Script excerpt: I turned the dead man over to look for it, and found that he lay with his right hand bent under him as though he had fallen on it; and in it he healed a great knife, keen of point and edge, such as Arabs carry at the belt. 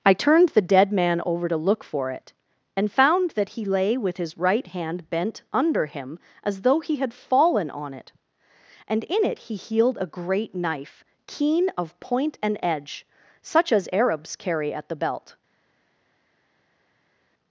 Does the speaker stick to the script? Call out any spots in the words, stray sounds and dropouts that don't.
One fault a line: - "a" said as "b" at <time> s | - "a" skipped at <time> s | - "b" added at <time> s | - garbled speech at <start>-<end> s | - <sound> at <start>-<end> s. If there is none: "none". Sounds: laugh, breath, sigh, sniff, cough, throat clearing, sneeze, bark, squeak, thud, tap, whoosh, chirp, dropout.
none